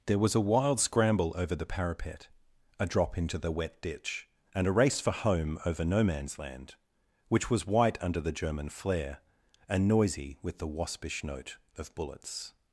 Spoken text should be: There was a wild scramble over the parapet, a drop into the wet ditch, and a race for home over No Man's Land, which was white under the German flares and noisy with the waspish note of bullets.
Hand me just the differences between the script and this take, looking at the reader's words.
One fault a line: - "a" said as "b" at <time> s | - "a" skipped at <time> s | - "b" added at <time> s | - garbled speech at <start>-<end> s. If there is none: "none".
- "flares" said as "flare" at 8.7 s